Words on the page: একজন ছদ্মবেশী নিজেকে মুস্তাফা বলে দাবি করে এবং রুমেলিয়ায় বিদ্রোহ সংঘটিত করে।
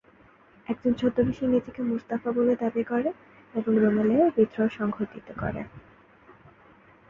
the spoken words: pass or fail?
pass